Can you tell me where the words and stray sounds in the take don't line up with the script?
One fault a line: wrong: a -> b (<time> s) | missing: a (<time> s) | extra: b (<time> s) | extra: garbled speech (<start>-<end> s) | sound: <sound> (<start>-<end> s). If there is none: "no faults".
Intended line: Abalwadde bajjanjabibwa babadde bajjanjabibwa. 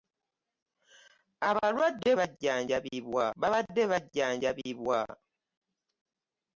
no faults